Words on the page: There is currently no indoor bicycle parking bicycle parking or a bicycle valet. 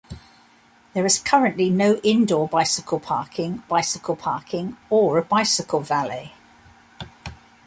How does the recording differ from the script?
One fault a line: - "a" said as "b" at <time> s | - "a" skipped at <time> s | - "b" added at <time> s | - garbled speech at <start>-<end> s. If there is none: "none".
none